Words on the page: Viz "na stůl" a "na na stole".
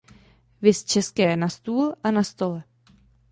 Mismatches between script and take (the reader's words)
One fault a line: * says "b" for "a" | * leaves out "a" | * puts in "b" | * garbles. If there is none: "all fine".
* puts in "české"
* leaves out "na"